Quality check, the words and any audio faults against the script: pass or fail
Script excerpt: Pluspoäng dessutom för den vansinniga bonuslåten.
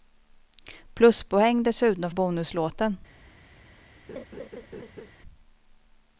fail